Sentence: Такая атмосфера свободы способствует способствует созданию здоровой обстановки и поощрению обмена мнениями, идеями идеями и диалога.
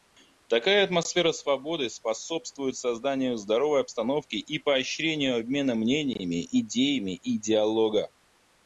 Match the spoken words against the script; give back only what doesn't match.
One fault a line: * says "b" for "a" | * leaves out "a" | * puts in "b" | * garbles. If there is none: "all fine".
* leaves out "способствует"
* leaves out "идеями"